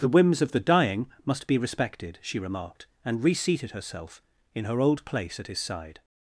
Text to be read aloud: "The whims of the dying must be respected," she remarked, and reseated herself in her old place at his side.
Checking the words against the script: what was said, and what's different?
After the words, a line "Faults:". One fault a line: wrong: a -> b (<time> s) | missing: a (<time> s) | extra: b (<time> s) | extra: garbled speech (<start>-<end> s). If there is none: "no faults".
"The whims of the dying must be respected," she remarked, and reseated herself in her old place at his side.
Faults:
no faults